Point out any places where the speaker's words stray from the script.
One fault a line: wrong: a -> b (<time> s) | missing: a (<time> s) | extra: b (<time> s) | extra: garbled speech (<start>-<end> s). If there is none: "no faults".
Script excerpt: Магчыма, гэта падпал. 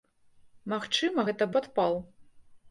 no faults